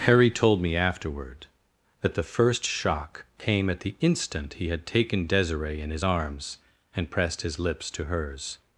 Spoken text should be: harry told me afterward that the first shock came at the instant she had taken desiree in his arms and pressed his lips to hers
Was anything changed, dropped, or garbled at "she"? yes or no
yes